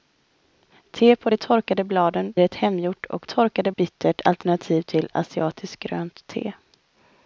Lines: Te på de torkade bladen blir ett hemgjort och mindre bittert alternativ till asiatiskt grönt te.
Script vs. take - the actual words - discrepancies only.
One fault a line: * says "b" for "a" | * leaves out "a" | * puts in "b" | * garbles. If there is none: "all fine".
* leaves out "blir"
* says "torkade" for "mindre"